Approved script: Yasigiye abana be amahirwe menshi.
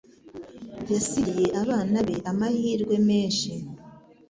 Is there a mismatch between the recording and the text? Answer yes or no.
no